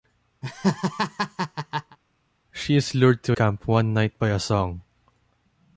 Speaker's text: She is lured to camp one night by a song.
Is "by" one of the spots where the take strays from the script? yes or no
no